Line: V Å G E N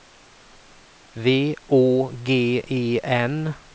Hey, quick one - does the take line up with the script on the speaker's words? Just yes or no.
yes